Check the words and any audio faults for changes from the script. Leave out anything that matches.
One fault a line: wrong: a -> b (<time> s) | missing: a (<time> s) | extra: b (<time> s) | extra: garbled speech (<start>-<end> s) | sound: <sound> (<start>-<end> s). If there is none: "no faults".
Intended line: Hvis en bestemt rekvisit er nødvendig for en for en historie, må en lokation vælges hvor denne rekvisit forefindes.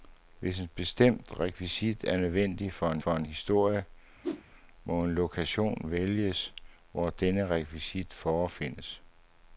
sound: whoosh (4.2-4.4 s)